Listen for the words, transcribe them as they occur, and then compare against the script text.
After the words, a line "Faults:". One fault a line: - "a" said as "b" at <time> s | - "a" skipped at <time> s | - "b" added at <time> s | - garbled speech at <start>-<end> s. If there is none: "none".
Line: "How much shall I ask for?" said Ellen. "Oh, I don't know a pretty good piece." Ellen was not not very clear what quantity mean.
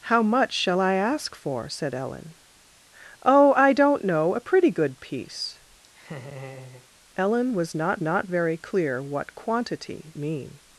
"How much shall I ask for?" said Ellen. "Oh, I don't know a pretty good piece." Ellen was not not very clear what quantity mean.
Faults:
none